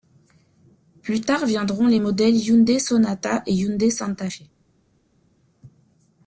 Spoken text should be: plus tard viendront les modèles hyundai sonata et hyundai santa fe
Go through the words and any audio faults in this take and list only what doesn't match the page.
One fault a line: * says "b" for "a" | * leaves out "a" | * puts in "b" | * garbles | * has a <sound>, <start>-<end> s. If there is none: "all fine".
all fine